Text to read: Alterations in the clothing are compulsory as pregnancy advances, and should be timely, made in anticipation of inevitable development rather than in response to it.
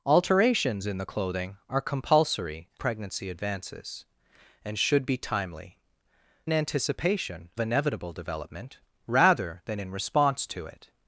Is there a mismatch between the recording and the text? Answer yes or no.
yes